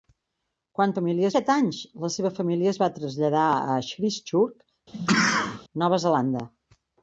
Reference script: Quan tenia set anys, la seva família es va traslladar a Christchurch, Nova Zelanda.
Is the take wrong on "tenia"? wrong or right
wrong